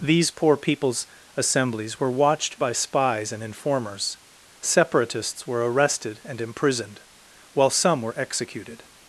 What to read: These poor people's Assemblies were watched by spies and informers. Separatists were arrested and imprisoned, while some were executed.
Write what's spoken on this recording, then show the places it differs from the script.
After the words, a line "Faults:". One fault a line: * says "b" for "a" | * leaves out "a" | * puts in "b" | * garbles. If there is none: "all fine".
These poor people's Assemblies were watched by spies and informers. Separatists were arrested and imprisoned, while some were executed.
Faults:
all fine